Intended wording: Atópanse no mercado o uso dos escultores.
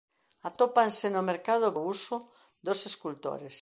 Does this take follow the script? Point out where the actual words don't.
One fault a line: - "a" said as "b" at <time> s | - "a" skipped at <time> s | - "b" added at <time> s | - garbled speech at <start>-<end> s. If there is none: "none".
none